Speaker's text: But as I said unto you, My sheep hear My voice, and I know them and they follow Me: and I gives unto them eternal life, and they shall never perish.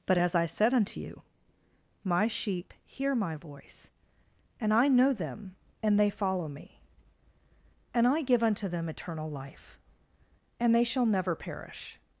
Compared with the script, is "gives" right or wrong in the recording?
wrong